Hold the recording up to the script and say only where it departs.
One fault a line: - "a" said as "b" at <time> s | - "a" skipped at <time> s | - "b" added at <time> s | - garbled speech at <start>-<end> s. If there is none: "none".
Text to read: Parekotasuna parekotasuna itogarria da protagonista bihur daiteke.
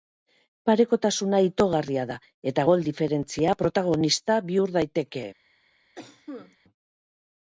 - "parekotasuna" skipped at 1.4 s
- "eta gol diferentzia" added at 2.5 s